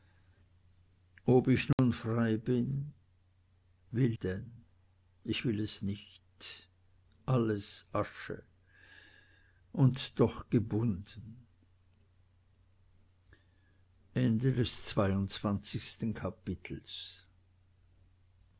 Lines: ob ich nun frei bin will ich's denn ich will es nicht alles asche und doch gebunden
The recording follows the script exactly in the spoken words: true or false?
false